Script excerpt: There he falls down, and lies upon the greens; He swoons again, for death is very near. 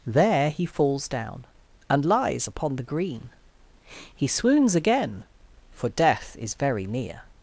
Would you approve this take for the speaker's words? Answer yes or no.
no